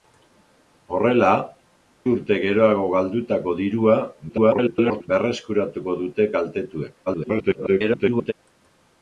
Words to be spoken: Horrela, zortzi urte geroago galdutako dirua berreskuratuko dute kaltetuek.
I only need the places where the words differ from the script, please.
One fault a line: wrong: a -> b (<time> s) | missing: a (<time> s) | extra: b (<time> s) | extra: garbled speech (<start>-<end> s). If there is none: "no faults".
missing: zortzi (1.3 s)
extra: garbled speech (4.3-5.1 s)
extra: garbled speech (7.1-8.3 s)